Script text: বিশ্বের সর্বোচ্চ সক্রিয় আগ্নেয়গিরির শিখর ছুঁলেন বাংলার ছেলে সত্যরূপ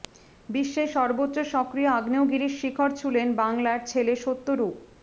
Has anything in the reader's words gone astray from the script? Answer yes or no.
no